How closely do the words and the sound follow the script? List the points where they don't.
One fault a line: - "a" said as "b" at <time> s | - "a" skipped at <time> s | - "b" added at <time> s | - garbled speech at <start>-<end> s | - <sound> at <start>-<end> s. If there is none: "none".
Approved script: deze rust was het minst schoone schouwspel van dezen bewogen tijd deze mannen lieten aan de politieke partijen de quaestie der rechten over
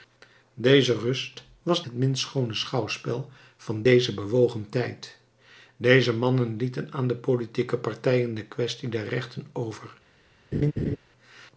- laugh at 10.5-11.0 s